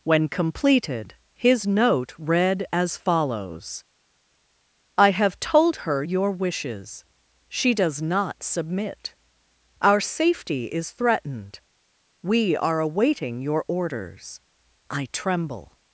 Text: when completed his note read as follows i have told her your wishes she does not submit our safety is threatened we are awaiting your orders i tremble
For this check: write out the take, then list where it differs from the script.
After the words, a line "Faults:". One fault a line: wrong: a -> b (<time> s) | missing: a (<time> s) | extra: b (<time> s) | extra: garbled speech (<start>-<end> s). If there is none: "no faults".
when completed his note read as follows i have told her your wishes she does not submit our safety is threatened we are awaiting your orders i tremble
Faults:
no faults